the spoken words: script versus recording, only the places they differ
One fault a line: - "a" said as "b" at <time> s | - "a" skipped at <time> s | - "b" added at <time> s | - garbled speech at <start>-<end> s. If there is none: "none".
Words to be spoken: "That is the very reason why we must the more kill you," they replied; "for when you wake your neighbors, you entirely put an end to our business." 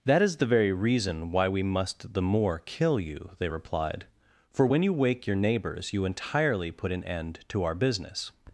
none